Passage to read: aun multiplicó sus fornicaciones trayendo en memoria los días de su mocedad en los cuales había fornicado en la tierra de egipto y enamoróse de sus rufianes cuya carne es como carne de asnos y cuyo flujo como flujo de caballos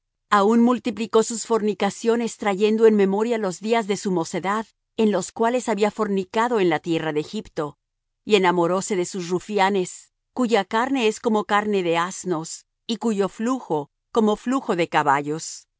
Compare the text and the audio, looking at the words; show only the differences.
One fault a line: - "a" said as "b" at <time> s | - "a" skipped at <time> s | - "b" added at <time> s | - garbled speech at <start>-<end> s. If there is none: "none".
none